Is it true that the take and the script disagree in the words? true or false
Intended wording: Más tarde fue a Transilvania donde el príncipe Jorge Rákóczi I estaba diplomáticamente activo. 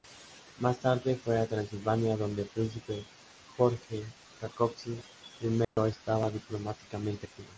false